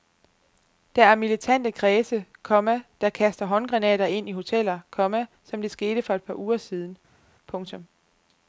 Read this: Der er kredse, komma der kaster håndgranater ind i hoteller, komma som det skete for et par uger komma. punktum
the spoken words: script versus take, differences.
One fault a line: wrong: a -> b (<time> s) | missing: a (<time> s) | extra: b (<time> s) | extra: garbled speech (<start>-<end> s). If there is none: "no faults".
extra: militante (1.1 s)
wrong: komma -> siden (6.6 s)